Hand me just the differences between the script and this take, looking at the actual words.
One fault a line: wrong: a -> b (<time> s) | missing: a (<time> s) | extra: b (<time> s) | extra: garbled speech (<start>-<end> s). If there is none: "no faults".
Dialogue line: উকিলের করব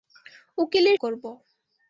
no faults